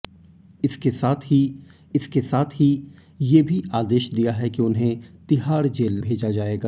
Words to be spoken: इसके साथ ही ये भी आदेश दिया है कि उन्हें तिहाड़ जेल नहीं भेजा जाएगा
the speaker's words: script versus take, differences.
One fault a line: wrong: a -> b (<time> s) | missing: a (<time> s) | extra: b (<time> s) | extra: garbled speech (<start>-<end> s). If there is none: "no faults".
extra: इसके साथ ही (1.9 s)
missing: नहीं (6.0 s)